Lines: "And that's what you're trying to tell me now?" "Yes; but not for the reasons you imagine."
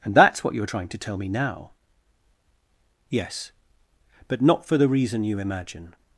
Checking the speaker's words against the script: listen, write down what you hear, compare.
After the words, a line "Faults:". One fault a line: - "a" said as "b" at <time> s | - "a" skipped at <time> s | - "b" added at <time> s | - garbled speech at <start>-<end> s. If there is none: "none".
"And that's what you're trying to tell me now?" "Yes; but not for the reason you imagine."
Faults:
- "reasons" said as "reason" at 4.9 s